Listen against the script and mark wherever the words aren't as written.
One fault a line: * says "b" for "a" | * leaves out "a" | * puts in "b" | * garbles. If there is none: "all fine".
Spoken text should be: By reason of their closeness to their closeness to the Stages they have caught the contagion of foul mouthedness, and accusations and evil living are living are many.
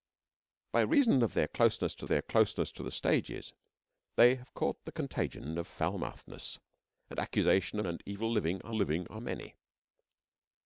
all fine